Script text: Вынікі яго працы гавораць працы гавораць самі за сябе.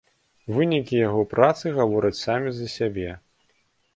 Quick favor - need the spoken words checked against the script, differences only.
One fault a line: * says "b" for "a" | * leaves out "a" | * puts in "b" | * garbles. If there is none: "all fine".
* leaves out "працы гавораць"